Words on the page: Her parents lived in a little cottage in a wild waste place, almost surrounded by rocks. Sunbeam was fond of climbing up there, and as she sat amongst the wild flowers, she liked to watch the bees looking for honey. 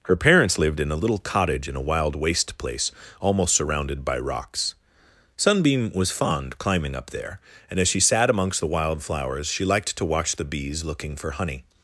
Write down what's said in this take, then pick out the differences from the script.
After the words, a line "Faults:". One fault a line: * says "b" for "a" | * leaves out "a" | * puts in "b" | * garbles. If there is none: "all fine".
Her parents lived in a little cottage in a wild waste place, almost surrounded by rocks. Sunbeam was fond climbing up there, and as she sat amongst the wild flowers, she liked to watch the bees looking for honey.
Faults:
* leaves out "of"